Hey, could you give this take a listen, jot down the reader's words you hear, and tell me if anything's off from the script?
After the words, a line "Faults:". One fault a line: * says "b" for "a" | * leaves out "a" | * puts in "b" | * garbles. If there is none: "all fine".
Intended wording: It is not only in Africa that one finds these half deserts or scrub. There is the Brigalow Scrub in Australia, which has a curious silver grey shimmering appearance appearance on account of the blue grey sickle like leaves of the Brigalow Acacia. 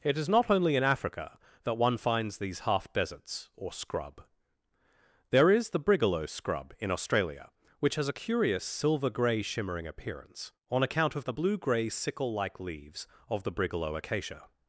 It is not only in Africa that one finds these half deserts or scrub. There is the Brigalow Scrub in Australia, which has a curious silver grey shimmering appearance on account of the blue grey sickle like leaves of the Brigalow Acacia.
Faults:
* leaves out "appearance"